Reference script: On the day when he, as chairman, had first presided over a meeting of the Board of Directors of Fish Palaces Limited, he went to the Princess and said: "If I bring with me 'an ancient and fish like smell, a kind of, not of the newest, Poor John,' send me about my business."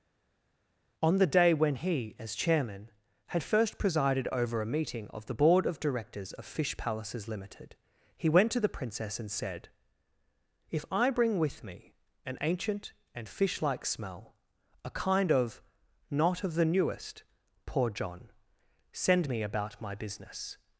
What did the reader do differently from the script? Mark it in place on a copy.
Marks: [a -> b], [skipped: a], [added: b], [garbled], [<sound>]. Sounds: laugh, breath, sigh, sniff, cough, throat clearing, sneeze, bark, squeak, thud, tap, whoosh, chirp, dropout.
On the day when he, as chairman, had first presided over a meeting of the Board of Directors of Fish Palaces Limited, he went to the Princess and said: "If I bring with me 'an ancient and fish like smell, a kind of, not of the newest, Poor John,' send me about my business."